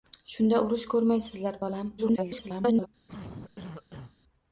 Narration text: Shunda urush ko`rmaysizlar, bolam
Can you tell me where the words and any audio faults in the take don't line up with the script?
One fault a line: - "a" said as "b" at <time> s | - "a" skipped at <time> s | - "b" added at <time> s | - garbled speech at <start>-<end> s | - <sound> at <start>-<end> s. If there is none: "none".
- garbled speech at 2.0-2.9 s
- cough at 3.1-4.2 s